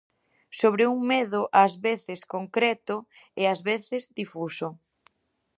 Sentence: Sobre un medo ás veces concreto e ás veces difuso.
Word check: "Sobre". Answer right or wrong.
right